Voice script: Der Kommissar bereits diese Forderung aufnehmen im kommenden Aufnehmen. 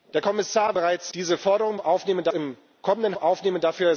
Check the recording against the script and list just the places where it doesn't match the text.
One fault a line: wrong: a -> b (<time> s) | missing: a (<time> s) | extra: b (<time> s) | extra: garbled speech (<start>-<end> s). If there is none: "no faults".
no faults